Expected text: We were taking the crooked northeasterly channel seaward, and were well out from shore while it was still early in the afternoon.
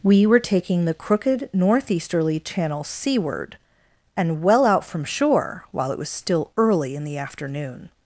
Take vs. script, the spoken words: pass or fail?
fail